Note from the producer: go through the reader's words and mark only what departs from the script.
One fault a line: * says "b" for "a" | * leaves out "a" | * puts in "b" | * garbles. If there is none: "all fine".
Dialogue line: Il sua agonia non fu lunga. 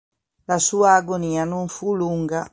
* says "La" for "Il"